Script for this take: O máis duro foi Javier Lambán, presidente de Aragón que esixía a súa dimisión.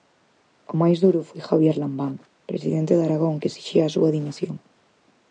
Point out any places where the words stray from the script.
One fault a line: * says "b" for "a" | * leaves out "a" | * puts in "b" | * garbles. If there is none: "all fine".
all fine